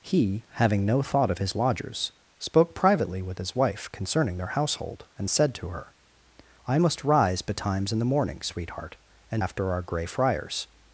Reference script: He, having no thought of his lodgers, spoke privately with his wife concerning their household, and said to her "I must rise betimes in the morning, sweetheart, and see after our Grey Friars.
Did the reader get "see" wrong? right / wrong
wrong